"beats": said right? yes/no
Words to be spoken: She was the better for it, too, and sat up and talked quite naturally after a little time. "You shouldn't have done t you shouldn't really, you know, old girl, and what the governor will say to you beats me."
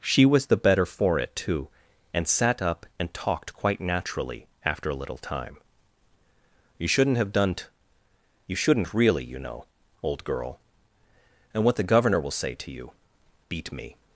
no